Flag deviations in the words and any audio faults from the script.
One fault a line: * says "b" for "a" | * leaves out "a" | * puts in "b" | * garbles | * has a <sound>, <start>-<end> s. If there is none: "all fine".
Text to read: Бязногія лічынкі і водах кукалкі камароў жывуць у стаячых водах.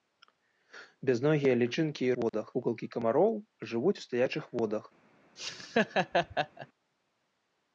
* has a dropout, 2.3-2.3 s
* has a laugh, 5.4-6.7 s